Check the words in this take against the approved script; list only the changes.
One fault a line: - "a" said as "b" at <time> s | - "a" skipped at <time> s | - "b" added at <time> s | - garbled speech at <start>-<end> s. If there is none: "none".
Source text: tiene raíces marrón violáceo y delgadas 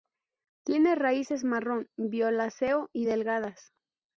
none